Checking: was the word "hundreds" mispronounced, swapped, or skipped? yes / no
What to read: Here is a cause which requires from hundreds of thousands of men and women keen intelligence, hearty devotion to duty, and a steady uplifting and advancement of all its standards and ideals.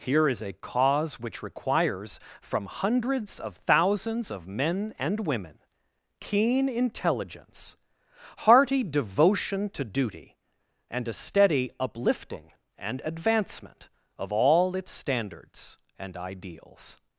no